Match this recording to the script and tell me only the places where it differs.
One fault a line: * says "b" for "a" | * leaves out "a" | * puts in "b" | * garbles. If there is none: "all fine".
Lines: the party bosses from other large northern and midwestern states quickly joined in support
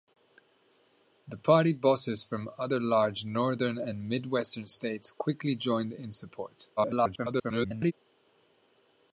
* garbles